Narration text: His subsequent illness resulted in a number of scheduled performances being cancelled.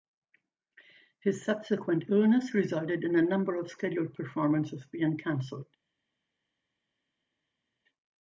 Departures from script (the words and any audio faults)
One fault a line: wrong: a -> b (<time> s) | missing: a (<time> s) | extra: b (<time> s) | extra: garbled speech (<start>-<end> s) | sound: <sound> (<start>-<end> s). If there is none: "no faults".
no faults